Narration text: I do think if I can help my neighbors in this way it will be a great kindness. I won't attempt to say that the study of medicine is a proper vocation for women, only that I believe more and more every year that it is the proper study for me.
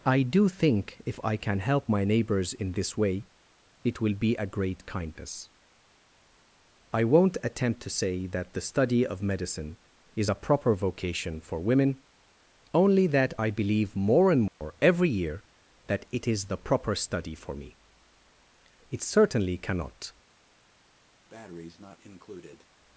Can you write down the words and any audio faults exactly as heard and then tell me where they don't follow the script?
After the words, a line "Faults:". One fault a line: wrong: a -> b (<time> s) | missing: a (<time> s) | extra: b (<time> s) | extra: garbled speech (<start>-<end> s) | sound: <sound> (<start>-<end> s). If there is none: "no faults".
I do think if I can help my neighbors in this way it will be a great kindness. I won't attempt to say that the study of medicine is a proper vocation for women, only that I believe more and more every year that it is the proper study for me. It certainly cannot
Faults:
sound: dropout (14.5-14.6 s)
extra: It certainly cannot (18.9 s)
sound: breath (21.3-22.7 s)